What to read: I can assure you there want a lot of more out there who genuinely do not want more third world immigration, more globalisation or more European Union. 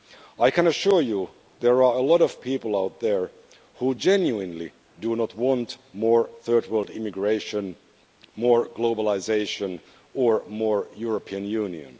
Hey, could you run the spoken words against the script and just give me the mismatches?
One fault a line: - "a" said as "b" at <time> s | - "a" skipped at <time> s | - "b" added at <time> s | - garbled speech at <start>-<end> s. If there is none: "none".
- "want" said as "are" at 1.8 s
- "more" said as "people" at 2.4 s